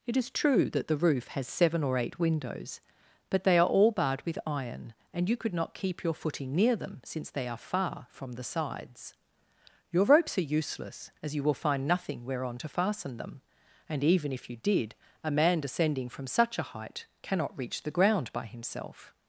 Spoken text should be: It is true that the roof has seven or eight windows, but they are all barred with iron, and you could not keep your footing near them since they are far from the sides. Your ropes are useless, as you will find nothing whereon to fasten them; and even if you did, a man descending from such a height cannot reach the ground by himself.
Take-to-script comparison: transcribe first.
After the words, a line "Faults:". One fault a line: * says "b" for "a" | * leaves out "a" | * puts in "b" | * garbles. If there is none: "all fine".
It is true that the roof has seven or eight windows, but they are all barred with iron, and you could not keep your footing near them since they are far from the sides. Your ropes are useless, as you will find nothing whereon to fasten them; and even if you did, a man descending from such a height cannot reach the ground by himself.
Faults:
all fine